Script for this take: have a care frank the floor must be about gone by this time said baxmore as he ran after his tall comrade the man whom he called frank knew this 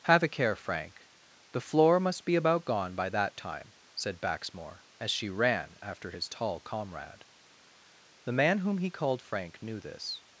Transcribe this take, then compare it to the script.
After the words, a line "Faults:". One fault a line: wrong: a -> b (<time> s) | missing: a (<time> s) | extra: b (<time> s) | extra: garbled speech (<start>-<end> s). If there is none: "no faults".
have a care frank the floor must be about gone by that time said baxmore as she ran after his tall comrade the man whom he called frank knew this
Faults:
wrong: this -> that (3.1 s)
wrong: he -> she (5.1 s)